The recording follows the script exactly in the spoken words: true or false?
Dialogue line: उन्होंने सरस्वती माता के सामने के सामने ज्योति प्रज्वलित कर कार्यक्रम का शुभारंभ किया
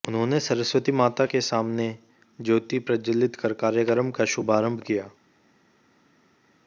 false